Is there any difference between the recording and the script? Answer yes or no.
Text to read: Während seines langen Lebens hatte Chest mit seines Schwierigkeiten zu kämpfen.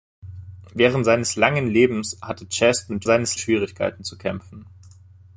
no